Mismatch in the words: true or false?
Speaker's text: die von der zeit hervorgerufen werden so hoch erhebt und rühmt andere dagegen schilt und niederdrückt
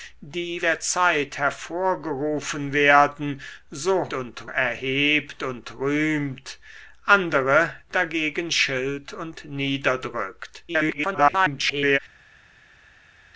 true